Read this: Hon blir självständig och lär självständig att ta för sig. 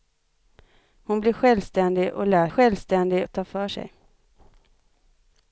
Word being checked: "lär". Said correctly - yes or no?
yes